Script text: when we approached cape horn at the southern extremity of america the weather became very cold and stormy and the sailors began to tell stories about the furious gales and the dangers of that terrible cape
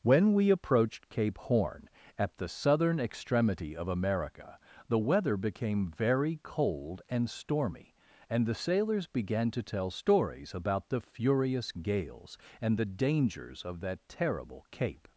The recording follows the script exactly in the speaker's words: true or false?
true